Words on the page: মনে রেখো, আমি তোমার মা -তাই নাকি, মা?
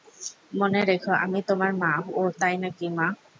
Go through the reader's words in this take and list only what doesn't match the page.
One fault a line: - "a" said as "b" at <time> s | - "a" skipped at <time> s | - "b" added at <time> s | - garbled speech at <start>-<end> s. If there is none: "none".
- "ওহ" added at 2.0 s